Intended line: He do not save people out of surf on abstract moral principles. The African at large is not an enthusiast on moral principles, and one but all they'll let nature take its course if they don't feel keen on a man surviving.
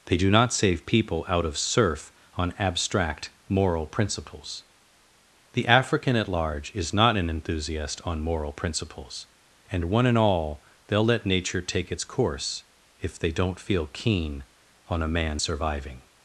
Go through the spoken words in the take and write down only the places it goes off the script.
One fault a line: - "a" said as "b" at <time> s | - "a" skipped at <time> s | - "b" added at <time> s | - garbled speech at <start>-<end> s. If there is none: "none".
- "He" said as "They" at 0.1 s
- "but" said as "and" at 10.1 s